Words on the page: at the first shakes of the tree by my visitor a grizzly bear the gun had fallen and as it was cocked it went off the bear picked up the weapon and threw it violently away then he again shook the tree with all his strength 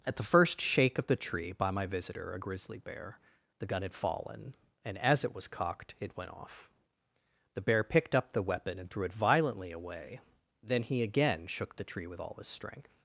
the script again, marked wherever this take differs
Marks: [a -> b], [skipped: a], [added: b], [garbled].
at the first [shakes -> shake] of the tree by my visitor a grizzly bear the gun had fallen and as it was cocked it went off the bear picked up the weapon and threw it violently away then he again shook the tree with all his strength